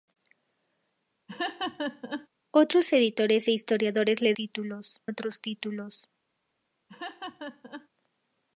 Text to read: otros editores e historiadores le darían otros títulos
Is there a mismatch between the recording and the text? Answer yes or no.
yes